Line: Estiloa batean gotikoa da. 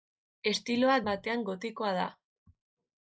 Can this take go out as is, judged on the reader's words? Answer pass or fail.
pass